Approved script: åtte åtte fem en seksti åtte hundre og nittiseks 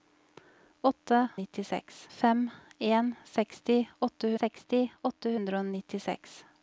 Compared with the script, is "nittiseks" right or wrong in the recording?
right